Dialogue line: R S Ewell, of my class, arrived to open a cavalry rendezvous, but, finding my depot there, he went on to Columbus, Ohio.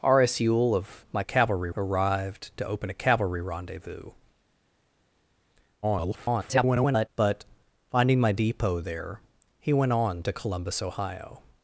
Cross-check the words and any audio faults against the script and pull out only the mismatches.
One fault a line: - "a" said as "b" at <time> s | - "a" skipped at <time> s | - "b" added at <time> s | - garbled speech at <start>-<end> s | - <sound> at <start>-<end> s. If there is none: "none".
- "class" said as "cavalry" at 1.2 s
- garbled speech at 5.8-7.1 s